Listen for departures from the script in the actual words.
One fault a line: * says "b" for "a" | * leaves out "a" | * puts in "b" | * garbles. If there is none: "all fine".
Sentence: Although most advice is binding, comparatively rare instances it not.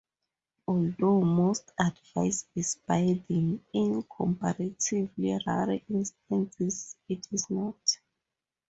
* puts in "in"
* puts in "is"